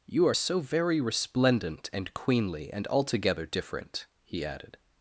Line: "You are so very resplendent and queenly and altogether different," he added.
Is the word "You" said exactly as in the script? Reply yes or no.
yes